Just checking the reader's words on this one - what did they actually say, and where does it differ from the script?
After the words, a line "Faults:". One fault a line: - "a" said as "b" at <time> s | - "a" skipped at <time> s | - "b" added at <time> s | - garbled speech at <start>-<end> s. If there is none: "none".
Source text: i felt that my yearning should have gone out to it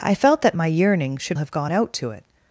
i felt that my yearning should have gone out to it
Faults:
none